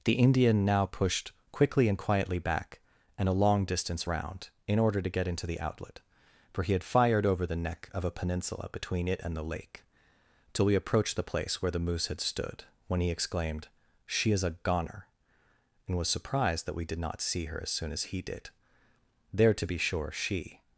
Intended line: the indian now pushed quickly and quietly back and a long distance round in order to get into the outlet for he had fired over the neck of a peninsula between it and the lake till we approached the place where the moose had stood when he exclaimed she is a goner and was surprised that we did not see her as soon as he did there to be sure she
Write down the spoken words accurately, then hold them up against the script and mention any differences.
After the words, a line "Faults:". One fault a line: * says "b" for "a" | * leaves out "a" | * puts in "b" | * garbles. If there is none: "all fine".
the indian now pushed quickly and quietly back and a long distance round in order to get into the outlet for he had fired over the neck of a peninsula between it and the lake till we approached the place where the moose had stood when he exclaimed she is a goner and was surprised that we did not see her as soon as he did there to be sure she
Faults:
all fine